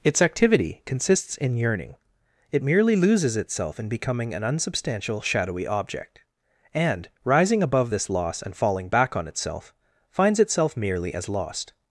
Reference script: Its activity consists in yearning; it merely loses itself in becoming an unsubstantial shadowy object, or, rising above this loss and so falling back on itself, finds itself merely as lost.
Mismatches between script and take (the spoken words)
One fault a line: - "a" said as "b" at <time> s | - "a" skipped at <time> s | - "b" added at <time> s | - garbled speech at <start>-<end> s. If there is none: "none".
- "or" said as "and" at 6.7 s
- "so" skipped at 8.5 s